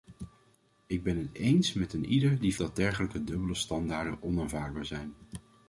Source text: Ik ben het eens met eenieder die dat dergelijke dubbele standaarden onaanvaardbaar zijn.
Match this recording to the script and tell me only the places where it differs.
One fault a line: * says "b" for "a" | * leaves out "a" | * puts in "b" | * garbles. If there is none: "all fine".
all fine